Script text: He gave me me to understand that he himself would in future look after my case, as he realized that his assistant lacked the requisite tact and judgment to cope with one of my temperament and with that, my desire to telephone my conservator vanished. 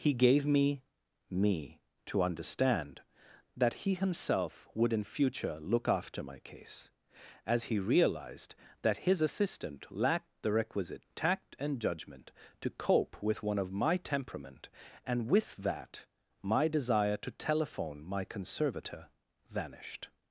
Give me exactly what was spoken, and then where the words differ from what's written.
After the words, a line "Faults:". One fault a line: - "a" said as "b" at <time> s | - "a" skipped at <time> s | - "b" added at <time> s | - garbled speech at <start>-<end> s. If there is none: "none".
He gave me me to understand that he himself would in future look after my case, as he realized that his assistant lacked the requisite tact and judgment to cope with one of my temperament and with that, my desire to telephone my conservator vanished.
Faults:
none